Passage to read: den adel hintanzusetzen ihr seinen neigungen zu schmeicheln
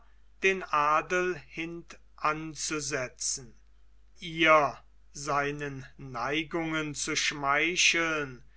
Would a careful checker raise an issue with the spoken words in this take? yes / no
no